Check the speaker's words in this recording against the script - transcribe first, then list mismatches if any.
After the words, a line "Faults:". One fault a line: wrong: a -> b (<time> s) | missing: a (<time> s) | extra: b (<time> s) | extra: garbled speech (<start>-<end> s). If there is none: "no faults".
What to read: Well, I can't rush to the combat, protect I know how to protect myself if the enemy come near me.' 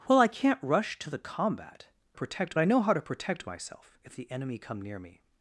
Well, I can't rush to the combat, protect I know how to protect myself if the enemy come near me.'
Faults:
no faults